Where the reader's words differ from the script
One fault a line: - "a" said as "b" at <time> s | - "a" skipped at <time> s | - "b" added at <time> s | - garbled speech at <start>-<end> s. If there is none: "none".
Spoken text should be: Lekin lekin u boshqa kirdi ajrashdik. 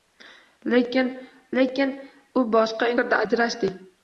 none